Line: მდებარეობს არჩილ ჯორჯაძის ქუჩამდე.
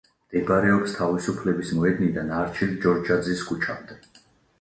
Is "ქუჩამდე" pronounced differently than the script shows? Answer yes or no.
no